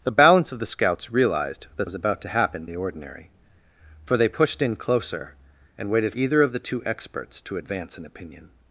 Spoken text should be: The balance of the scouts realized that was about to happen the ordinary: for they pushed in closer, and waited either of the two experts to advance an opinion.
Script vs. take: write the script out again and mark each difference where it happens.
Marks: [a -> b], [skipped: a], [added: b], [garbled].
The balance of the scouts realized that was about to happen the ordinary: for they pushed in closer, and waited either of the two experts to advance an opinion.